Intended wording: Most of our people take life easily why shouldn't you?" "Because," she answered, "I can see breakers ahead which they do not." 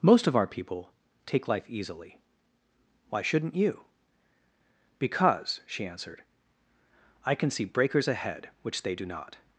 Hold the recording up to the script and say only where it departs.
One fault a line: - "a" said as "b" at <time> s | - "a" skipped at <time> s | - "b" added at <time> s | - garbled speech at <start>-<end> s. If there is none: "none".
none